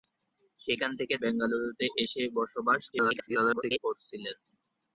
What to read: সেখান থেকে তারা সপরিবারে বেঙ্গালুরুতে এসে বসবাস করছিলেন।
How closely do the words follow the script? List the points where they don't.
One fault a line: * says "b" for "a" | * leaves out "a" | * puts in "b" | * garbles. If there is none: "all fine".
* leaves out "তারা সপরিবারে"
* garbles